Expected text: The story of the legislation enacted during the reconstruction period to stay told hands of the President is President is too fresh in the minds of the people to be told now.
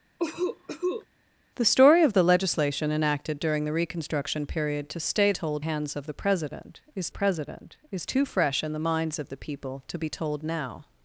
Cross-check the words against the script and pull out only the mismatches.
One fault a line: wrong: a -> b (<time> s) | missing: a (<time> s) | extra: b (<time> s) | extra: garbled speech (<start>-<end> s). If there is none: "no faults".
no faults